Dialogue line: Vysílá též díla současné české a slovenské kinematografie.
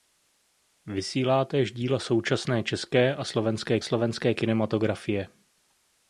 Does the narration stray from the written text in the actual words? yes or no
yes